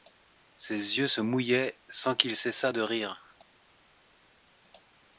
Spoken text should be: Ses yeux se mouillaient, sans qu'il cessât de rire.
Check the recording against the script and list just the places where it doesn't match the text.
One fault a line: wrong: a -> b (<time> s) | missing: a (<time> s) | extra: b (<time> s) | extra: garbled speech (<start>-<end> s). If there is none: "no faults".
no faults